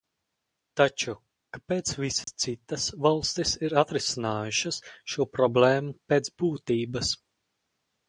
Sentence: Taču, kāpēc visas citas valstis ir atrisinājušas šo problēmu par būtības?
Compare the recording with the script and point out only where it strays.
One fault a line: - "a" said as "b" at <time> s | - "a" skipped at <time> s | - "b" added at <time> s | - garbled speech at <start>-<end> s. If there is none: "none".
- "par" said as "pēc" at 6.1 s